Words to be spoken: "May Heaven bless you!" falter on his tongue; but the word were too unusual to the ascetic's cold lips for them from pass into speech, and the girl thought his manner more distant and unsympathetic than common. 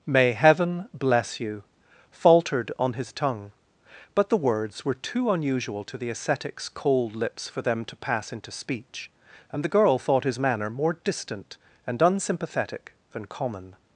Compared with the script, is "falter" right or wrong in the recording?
wrong